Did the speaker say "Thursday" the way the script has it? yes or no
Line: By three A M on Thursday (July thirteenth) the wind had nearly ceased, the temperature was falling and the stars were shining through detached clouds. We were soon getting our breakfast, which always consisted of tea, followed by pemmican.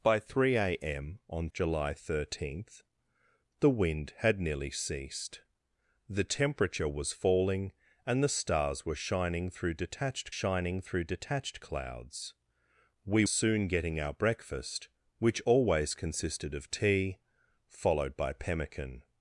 no